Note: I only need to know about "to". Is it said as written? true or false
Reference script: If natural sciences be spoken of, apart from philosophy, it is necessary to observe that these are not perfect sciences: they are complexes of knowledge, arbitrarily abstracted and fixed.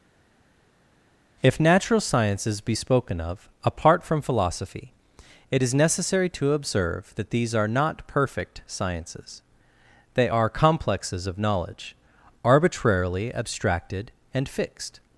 true